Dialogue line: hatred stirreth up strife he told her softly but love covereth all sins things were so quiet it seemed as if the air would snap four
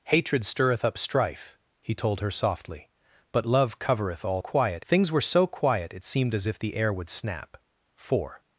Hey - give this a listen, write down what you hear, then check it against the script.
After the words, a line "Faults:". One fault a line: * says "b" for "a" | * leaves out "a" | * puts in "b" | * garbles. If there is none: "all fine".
hatred stirreth up strife he told her softly but love covereth all quiet things were so quiet it seemed as if the air would snap four
Faults:
* says "quiet" for "sins"